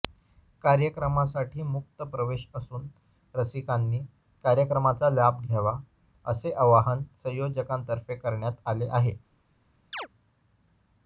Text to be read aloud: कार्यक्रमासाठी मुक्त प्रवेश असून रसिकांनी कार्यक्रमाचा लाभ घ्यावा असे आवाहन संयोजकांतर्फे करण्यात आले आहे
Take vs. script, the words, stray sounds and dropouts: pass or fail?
fail